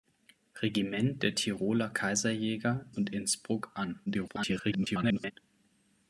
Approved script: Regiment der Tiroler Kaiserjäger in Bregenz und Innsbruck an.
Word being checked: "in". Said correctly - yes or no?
no